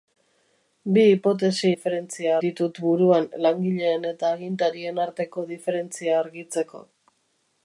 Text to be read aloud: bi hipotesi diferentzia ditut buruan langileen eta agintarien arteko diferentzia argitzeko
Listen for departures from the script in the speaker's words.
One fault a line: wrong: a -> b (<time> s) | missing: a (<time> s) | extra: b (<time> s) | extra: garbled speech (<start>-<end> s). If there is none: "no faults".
no faults